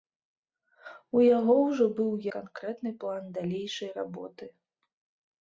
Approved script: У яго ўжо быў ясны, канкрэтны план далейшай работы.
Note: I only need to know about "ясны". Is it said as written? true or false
false